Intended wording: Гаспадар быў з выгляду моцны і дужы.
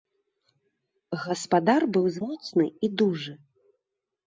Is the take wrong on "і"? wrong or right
right